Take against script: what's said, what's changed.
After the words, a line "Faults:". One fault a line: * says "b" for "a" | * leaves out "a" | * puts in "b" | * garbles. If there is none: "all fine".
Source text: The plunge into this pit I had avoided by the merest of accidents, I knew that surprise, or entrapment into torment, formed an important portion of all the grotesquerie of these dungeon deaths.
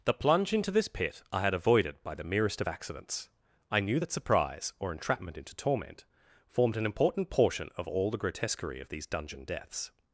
The plunge into this pit I had avoided by the merest of accidents, I knew that surprise, or entrapment into torment, formed an important portion of all the grotesquerie of these dungeon deaths.
Faults:
all fine